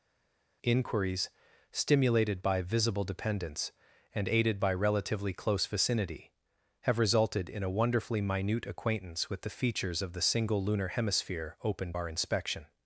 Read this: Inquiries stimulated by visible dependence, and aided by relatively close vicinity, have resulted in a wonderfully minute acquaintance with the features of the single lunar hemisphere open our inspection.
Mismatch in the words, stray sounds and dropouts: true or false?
false